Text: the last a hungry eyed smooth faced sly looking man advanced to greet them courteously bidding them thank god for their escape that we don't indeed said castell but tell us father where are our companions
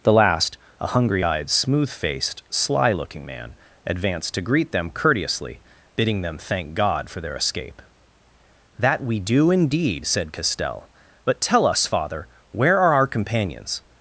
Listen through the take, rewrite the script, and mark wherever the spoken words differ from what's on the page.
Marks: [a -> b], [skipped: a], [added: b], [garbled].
the last a hungry eyed smooth faced sly looking man advanced to greet them courteously bidding them thank god for their escape that we [don't -> do] indeed said castell but tell us father where are our companions